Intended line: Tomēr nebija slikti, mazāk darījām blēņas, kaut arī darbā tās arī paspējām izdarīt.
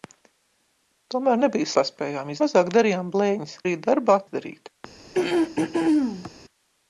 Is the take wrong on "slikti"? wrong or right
wrong